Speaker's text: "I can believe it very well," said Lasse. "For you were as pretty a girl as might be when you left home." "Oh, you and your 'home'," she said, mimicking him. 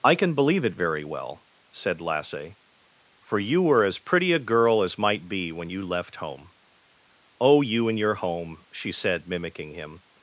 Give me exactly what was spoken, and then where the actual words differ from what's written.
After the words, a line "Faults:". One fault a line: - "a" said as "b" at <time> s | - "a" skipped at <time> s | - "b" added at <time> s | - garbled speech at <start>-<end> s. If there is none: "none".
"I can believe it very well," said Lasse. "For you were as pretty a girl as might be when you left home." "Oh, you and your 'home'," she said, mimicking him.
Faults:
none